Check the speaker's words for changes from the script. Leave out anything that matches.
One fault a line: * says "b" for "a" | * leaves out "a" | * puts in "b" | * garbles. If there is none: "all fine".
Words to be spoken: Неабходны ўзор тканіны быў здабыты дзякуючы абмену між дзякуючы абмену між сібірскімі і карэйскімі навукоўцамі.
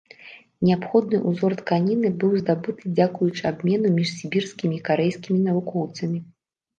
* leaves out "дзякуючы абмену між"